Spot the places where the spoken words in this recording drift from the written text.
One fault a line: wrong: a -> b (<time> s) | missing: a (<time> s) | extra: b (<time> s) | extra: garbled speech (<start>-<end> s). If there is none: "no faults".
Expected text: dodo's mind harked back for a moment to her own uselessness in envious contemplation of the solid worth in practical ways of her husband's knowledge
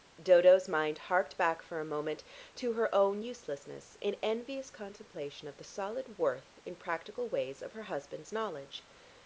no faults